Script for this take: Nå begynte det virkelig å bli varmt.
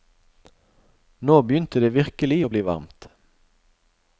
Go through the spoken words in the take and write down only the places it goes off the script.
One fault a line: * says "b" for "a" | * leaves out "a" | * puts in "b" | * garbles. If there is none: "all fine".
all fine